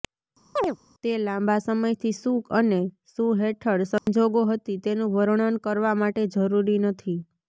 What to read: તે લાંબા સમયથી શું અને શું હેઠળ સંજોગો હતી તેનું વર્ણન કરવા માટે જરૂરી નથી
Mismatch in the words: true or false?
false